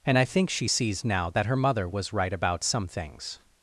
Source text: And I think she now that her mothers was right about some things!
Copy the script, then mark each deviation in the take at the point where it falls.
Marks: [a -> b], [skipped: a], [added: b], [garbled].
And I think she [added: sees] now that her [mothers -> mother] was right about some things!